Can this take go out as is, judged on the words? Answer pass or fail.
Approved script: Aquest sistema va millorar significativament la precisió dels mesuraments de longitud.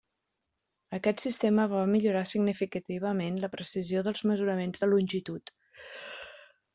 pass